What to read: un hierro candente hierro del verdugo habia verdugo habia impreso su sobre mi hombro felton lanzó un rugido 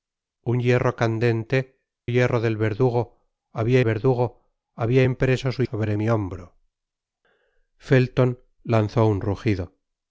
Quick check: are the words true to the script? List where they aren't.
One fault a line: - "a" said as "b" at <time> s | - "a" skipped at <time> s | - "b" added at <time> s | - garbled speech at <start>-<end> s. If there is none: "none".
none